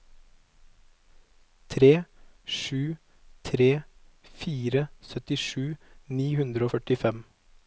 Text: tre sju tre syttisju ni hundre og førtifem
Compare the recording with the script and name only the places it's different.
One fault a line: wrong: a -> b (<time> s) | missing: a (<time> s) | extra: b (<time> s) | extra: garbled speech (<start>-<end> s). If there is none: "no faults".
extra: fire (4.4 s)